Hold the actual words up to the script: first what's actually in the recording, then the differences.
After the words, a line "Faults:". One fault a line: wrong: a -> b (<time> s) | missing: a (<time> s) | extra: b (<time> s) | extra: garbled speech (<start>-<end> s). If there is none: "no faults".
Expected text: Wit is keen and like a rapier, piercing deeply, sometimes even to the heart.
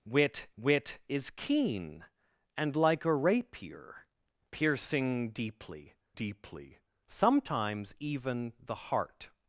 Wit wit is keen and like a rapier, piercing deeply deeply, sometimes even the heart.
Faults:
extra: wit (0.6 s)
extra: deeply (6.1 s)
missing: to (8.5 s)